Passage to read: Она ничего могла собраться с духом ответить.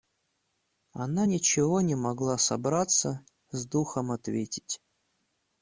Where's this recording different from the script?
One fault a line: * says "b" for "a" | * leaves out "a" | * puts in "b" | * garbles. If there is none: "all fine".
* puts in "не"